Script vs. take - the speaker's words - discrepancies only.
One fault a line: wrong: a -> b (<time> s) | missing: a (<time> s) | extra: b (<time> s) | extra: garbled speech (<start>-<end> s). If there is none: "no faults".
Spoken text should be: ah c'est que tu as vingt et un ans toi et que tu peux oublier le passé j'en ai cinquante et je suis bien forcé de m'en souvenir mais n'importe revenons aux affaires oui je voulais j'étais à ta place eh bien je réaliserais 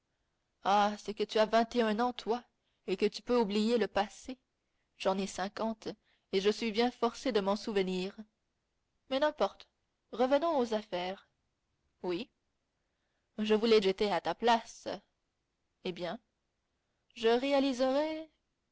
no faults